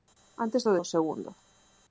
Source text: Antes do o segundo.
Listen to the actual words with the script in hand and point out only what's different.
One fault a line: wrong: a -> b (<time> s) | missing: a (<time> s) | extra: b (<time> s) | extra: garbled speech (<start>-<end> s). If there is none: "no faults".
no faults